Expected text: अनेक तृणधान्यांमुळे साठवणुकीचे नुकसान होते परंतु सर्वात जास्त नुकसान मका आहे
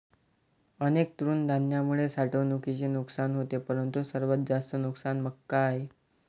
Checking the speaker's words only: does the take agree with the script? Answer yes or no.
yes